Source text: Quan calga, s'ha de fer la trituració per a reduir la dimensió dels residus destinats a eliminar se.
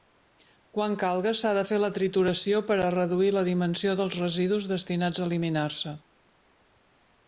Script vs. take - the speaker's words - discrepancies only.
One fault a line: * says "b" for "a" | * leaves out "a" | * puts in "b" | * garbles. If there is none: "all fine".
all fine